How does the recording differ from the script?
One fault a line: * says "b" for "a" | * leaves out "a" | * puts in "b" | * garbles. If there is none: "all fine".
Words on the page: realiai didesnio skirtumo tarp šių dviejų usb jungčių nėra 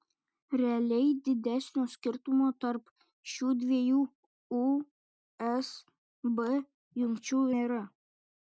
all fine